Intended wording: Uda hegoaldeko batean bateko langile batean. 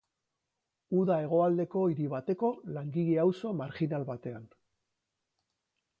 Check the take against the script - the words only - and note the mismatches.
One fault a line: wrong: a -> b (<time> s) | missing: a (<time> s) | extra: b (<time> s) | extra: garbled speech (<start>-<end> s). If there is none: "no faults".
wrong: batean -> hiri (1.9 s)
extra: auzo marjinal (3.2 s)